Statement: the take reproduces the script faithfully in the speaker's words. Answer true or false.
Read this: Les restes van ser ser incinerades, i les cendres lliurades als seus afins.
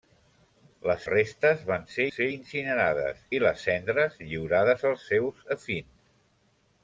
true